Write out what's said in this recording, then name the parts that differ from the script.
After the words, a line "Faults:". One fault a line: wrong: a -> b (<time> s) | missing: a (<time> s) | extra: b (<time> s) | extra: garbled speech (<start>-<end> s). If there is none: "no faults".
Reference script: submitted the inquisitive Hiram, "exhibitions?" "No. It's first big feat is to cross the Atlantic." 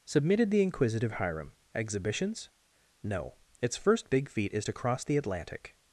submitted the inquisitive Hiram, "exhibitions?" "No. It's first big feat is to cross the Atlantic."
Faults:
no faults